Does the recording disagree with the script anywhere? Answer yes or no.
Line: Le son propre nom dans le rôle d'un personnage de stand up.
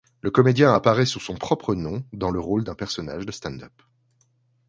yes